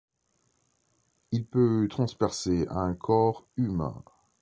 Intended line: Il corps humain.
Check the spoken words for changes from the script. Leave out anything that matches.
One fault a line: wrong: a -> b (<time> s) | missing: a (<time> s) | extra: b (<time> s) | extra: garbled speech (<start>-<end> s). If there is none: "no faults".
extra: peut transpercer un (1.4 s)